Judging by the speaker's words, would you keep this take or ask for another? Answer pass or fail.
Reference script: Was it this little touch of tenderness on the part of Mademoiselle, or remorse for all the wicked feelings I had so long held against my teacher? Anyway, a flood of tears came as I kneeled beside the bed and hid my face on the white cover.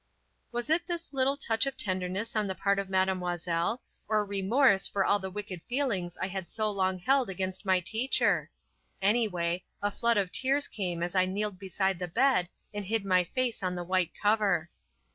pass